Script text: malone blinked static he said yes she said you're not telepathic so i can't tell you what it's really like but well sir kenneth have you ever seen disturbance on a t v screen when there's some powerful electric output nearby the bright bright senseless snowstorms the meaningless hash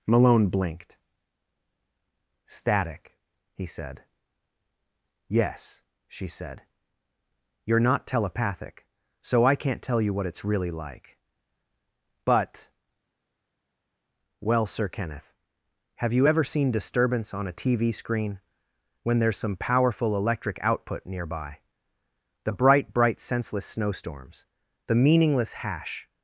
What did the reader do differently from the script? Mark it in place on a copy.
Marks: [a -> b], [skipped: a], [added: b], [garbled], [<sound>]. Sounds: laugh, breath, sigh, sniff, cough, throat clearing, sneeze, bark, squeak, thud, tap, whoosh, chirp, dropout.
malone blinked static he said yes she said you're not telepathic so i can't tell you what it's really like but well sir kenneth have you ever seen disturbance on a t v screen when there's some powerful electric output nearby the bright bright senseless snowstorms the meaningless hash